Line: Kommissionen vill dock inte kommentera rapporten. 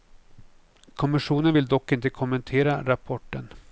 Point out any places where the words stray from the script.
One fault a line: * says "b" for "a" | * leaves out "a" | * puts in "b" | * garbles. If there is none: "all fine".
all fine